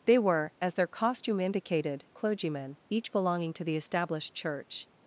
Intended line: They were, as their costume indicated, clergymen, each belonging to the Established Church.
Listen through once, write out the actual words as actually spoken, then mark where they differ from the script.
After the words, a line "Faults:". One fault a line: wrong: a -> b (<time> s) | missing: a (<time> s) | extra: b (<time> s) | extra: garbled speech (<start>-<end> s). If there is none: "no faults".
They were, as their costume indicated, clergymen, each belonging to the Established Church.
Faults:
no faults